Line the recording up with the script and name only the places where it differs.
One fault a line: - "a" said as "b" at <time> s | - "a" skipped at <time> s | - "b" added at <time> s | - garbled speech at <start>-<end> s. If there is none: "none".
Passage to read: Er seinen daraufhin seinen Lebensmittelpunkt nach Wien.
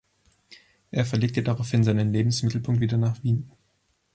- "seinen" said as "verlegte" at 1.1 s
- "wieder" added at 2.8 s